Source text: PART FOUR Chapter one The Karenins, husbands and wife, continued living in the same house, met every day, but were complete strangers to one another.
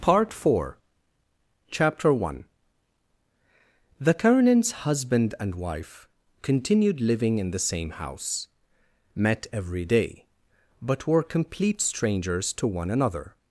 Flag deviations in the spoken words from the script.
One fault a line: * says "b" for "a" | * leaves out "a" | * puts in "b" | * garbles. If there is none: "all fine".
* says "husband" for "husbands"